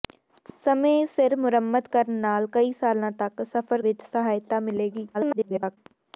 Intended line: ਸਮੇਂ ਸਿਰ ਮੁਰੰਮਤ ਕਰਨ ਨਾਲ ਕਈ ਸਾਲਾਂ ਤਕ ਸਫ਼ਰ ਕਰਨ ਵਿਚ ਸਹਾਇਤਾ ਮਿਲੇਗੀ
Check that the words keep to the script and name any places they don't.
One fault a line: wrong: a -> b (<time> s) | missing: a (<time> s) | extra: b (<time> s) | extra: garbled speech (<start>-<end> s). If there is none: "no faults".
missing: ਕਰਨ (3.8 s)
extra: garbled speech (5.1-5.8 s)